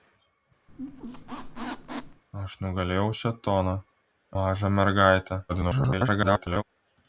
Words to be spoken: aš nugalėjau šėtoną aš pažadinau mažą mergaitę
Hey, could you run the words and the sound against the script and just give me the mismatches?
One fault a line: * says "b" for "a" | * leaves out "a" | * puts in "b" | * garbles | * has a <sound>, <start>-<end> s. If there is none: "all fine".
* has a squeak, 0.7-2.2 s
* leaves out "aš pažadinau"
* garbles